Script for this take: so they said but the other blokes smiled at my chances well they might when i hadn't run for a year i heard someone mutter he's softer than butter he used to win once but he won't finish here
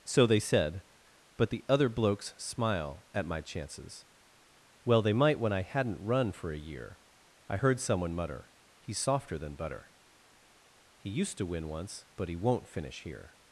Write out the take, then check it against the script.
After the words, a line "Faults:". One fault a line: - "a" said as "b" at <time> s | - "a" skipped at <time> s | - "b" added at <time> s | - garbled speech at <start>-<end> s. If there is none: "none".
so they said but the other blokes smile at my chances well they might when i hadn't run for a year i heard someone mutter he's softer than butter he used to win once but he won't finish here
Faults:
- "smiled" said as "smile" at 2.4 s